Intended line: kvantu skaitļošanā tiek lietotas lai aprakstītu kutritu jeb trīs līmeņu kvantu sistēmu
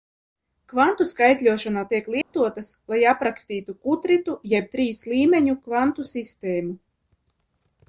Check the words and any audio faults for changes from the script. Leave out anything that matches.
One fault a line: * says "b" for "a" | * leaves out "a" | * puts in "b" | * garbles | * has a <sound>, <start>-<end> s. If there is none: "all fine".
* has a dropout, 2.2-2.3 s